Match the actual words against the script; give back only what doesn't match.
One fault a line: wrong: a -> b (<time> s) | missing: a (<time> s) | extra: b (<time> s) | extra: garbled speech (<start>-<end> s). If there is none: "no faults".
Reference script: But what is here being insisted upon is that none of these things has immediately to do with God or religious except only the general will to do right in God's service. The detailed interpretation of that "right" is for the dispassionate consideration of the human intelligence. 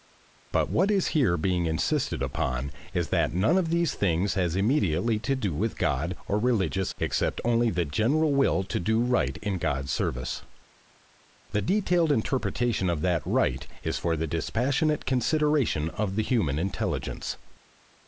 no faults